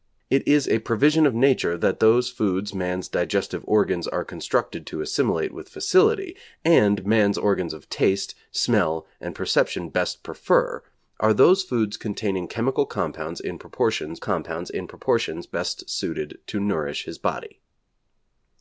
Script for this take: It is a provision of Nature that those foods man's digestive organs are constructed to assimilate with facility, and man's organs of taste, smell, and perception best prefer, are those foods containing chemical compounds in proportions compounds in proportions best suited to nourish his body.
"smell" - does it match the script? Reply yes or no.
yes